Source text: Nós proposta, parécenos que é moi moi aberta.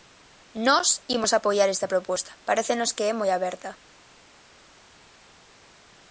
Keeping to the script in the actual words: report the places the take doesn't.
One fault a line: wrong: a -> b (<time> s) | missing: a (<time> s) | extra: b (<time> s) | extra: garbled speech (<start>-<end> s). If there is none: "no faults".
extra: imos apoiar esta (1.1 s)
missing: moi (3.3 s)